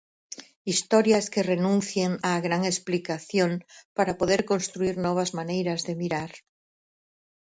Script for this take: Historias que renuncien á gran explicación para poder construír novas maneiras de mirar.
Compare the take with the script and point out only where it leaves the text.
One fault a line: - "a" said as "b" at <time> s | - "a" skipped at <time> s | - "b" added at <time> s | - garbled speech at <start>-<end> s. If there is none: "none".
none